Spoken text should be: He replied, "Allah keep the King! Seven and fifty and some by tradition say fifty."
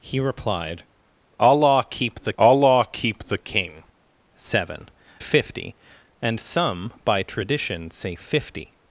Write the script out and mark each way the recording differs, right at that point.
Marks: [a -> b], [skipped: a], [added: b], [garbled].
He replied, "Allah keep the [added: allah keep the] King! Seven [skipped: and] fifty and some by tradition say fifty."